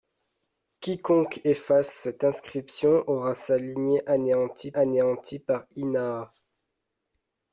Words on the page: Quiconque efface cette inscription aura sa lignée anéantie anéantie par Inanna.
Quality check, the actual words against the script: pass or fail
pass